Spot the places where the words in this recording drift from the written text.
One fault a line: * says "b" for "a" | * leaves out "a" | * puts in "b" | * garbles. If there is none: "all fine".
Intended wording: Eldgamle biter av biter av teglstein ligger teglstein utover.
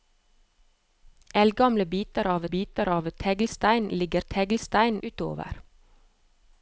all fine